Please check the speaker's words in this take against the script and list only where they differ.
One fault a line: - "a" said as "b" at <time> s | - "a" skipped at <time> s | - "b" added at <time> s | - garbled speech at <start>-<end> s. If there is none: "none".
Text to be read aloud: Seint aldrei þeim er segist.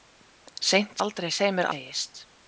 none